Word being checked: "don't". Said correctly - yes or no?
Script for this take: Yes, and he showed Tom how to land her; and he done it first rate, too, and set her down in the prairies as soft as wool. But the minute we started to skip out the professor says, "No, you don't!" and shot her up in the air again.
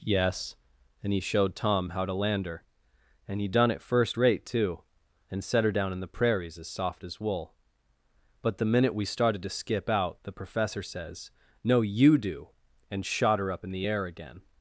no